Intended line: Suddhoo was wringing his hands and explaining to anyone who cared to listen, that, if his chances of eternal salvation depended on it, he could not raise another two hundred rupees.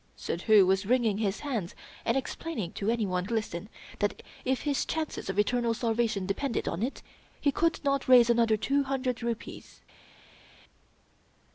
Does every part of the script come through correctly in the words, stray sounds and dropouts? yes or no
no